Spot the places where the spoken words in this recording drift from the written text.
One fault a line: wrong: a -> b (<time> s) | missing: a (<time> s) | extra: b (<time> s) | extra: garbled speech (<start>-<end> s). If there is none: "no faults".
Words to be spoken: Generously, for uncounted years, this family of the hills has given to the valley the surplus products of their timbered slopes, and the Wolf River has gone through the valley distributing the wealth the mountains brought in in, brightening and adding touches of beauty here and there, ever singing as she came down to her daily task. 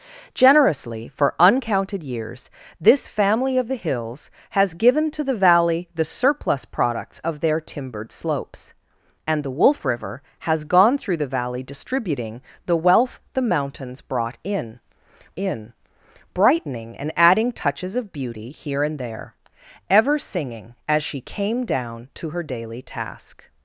no faults